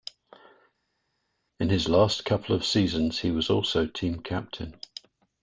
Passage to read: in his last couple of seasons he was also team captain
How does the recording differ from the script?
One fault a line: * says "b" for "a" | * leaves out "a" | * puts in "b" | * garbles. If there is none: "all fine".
all fine